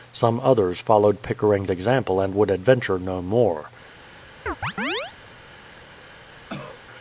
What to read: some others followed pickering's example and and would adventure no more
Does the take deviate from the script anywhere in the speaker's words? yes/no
yes